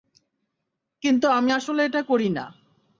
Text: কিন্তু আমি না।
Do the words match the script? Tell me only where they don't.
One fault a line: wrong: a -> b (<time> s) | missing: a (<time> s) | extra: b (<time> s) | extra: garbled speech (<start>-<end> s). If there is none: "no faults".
extra: আসলে এটা করি (1.5 s)